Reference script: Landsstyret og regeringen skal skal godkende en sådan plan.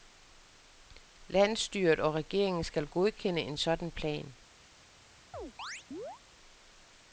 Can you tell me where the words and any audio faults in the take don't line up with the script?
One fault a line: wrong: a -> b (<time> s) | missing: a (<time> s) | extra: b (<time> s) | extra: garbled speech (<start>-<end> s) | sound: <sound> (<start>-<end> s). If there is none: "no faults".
missing: skal (2.9 s)
sound: chirp (5.3-6.2 s)